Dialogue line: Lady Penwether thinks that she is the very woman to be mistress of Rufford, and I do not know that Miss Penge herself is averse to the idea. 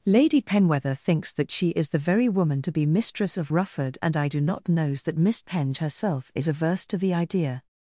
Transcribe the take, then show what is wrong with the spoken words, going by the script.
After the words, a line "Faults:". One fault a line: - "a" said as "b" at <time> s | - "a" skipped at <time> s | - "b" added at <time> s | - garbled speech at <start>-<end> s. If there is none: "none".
Lady Penwether thinks that she is the very woman to be mistress of Rufford, and I do not knows that Miss Penge herself is averse to the idea.
Faults:
- "know" said as "knows" at 4.7 s